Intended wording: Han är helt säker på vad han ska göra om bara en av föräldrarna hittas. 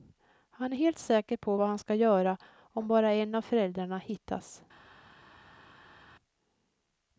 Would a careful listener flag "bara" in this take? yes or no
no